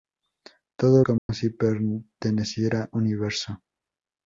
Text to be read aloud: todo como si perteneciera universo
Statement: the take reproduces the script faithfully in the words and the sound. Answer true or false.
false